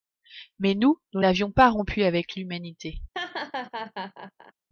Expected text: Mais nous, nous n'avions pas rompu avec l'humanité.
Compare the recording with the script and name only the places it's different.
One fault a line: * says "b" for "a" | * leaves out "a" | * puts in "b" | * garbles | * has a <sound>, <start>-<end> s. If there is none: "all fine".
* has a laugh, 3.1-4.5 s